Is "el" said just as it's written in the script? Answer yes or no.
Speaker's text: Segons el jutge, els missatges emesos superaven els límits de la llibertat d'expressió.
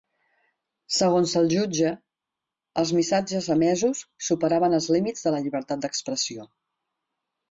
yes